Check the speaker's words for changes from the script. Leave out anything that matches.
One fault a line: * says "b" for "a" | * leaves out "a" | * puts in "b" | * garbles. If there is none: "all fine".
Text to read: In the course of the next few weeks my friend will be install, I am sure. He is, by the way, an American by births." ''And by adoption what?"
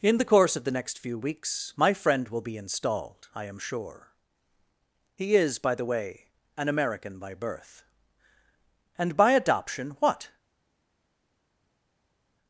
* says "installed" for "install"
* says "birth" for "births"